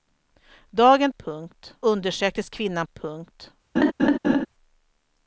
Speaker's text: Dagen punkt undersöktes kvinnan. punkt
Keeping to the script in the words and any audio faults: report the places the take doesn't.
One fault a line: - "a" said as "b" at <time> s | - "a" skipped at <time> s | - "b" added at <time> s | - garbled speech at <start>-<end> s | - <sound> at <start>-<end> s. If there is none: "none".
- laugh at 3.8-4.5 s